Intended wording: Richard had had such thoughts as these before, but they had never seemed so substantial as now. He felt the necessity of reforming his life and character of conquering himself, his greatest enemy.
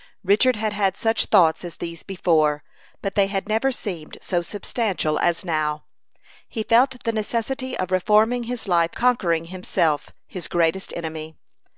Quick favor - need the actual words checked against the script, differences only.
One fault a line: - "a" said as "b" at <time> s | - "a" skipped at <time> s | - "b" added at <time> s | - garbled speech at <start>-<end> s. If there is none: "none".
- "and character of" skipped at 8.9 s